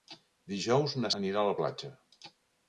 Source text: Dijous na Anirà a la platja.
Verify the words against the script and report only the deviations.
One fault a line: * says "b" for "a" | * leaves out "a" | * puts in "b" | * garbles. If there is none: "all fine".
all fine